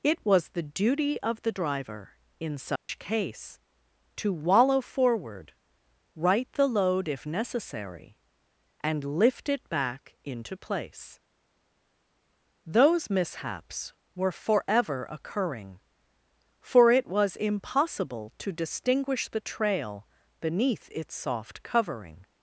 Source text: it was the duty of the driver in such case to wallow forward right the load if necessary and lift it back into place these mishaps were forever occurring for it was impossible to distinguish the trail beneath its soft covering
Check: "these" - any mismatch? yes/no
yes